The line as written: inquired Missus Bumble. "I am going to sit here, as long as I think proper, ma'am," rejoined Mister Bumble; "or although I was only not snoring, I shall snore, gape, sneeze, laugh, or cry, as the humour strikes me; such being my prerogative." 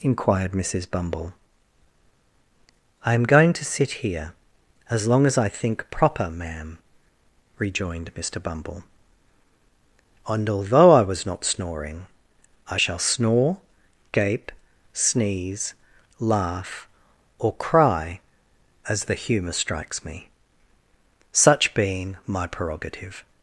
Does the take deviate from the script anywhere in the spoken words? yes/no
yes